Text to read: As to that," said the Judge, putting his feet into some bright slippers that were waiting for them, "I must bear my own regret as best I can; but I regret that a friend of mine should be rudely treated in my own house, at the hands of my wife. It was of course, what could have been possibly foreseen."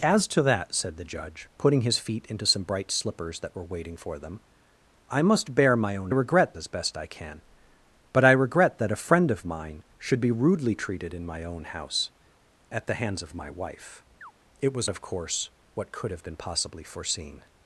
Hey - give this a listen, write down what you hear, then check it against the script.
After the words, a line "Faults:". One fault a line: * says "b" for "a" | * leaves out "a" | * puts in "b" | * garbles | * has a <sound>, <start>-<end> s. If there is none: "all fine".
As to that," said the Judge, putting his feet into some bright slippers that were waiting for them, "I must bear my own regret as best I can; but I regret that a friend of mine should be rudely treated in my own house, at the hands of my wife. It was of course, what could have been possibly foreseen."
Faults:
* has a chirp, 14.2-14.3 s